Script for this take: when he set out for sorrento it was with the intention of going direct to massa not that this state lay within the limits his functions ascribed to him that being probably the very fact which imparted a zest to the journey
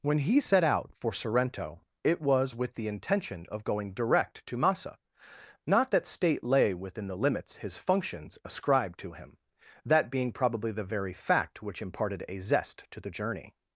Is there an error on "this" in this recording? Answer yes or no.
yes